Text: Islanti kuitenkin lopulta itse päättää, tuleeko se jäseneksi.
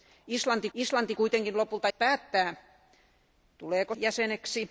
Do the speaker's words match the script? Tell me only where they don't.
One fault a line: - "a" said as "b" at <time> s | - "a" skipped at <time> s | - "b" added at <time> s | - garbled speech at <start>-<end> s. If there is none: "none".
- "islanti" added at 0.7 s
- "itse" skipped at 1.9 s
- "se" skipped at 3.9 s